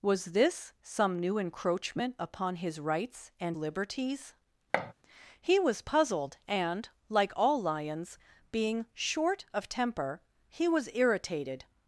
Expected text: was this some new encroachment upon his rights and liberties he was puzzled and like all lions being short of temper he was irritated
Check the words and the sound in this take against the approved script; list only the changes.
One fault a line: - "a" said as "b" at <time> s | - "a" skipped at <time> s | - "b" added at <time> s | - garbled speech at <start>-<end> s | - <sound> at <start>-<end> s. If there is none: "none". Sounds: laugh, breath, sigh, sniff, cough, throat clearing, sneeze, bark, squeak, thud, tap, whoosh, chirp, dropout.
- thud at 4.7-4.9 s